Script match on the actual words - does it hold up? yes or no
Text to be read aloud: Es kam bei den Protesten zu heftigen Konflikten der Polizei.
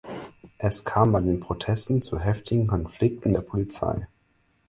yes